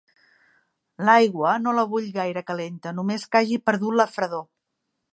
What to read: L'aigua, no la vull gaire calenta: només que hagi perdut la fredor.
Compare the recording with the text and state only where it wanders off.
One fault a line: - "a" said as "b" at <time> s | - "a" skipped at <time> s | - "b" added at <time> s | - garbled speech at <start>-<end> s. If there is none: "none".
none